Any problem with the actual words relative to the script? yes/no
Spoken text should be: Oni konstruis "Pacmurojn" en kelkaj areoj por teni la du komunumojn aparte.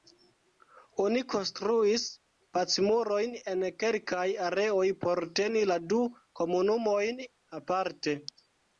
no